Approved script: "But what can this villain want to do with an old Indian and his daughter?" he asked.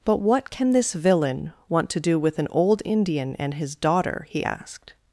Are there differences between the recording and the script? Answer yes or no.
no